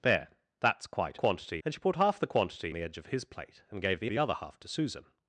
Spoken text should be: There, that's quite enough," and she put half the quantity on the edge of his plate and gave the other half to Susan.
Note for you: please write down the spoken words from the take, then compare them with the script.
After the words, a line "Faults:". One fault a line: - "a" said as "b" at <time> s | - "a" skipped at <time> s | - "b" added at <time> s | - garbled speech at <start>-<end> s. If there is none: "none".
There, that's quite quantity," and she put half the quantity the edge of his plate and gave the the other half to Susan.
Faults:
- "enough" said as "quantity" at 1.1 s
- "on" skipped at 2.7 s
- "the" added at 4.1 s